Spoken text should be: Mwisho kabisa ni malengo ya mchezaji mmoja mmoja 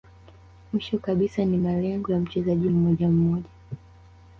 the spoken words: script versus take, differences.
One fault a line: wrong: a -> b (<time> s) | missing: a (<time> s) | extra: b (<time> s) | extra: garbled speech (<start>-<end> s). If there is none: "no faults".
no faults